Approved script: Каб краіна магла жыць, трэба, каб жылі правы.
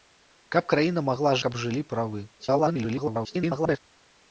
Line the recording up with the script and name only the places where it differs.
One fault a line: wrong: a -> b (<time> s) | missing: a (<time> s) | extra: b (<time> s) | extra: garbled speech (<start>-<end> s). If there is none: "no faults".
missing: жыць трэба (1.4 s)
extra: garbled speech (2.4-3.8 s)